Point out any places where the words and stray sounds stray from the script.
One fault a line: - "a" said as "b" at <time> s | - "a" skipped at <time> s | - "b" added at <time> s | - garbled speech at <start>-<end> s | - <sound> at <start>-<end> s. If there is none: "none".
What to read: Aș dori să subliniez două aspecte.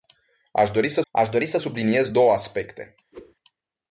- "aș dori să" added at 1.1 s
- whoosh at 3.1-3.3 s